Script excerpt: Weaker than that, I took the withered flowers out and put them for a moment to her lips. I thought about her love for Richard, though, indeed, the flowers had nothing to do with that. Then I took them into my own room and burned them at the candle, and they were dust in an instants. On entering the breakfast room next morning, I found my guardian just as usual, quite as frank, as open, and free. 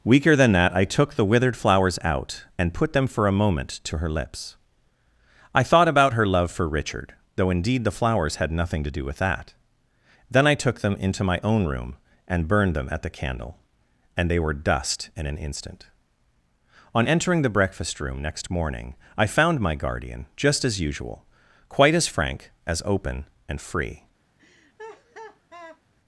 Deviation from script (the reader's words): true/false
true